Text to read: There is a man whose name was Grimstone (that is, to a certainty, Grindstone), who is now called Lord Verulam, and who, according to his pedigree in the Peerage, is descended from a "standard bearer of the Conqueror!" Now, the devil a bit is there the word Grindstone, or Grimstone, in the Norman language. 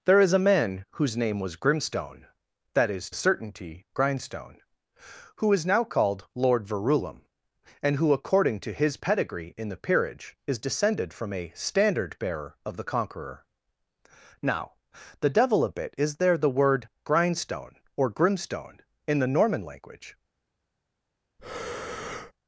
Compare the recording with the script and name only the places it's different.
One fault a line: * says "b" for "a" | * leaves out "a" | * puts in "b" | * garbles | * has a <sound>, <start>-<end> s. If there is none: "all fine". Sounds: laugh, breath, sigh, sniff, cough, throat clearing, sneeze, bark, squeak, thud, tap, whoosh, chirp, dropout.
* leaves out "to"
* has a breath, 21.4-22.3 s